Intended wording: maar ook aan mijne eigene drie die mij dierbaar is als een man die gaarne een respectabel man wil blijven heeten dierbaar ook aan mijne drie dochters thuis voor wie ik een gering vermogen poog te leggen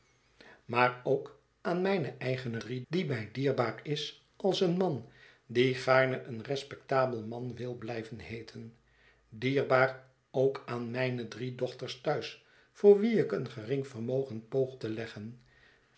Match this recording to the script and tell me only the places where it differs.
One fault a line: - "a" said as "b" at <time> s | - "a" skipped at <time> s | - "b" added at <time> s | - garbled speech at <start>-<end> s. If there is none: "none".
none